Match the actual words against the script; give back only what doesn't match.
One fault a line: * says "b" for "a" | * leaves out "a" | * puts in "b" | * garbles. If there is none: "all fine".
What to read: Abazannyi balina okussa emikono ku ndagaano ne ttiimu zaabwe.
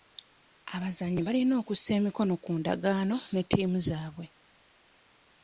all fine